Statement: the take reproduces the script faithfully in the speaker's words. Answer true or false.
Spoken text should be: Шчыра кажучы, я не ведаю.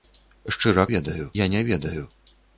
false